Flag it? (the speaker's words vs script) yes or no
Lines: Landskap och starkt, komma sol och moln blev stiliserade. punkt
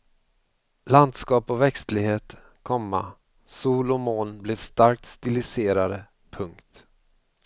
yes